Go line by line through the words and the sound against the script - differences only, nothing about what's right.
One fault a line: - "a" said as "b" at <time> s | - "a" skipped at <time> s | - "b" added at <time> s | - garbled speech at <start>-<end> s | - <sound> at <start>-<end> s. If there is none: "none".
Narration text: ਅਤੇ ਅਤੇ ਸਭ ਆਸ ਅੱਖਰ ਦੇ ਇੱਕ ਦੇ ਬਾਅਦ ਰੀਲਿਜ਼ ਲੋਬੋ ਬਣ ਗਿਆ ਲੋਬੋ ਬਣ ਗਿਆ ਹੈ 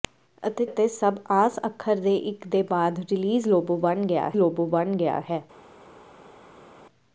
none